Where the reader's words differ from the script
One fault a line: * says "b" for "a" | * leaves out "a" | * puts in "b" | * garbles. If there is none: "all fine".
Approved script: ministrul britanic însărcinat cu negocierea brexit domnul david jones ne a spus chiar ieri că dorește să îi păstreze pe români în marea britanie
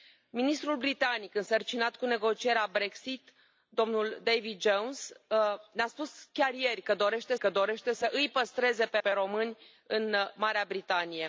* puts in "că dorește"
* puts in "pe"